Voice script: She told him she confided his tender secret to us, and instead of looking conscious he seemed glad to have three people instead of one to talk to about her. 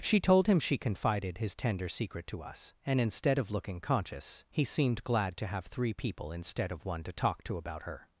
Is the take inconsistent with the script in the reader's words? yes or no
no